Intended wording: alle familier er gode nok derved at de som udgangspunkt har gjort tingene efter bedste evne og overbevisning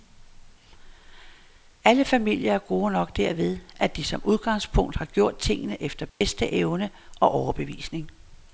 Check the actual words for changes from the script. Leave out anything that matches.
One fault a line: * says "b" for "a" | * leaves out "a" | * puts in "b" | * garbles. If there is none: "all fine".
all fine